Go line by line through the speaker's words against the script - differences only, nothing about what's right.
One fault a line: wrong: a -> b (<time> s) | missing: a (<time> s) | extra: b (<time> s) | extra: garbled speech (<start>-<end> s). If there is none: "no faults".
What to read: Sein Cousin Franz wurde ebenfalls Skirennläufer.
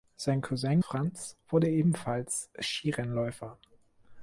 no faults